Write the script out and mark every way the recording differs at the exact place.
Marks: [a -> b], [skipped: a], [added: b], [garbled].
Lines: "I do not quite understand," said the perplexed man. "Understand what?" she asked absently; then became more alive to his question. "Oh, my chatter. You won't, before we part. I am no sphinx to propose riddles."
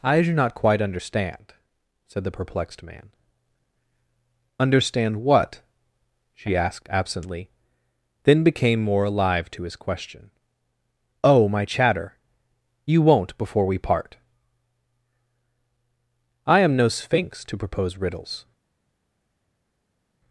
"I do not quite understand," said the perplexed man. "Understand what?" she asked absently; then became more alive to his question. "Oh, my chatter. You won't, before we part. I am no sphinx to propose riddles."